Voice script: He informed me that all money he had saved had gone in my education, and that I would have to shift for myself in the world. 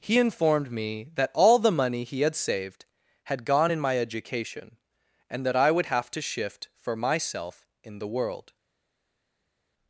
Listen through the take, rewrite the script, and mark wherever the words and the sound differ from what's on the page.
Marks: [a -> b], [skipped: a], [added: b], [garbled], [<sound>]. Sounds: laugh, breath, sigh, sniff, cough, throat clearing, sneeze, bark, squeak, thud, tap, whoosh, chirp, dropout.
He informed me that all [added: the] money he had saved had gone in my education, and that I would have to shift for myself in the world.